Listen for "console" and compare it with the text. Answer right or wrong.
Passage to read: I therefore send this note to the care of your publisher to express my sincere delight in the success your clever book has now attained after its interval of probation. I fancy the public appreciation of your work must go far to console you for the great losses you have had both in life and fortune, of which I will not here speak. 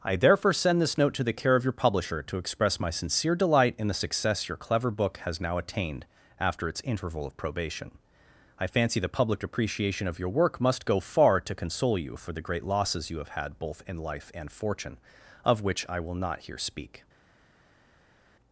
right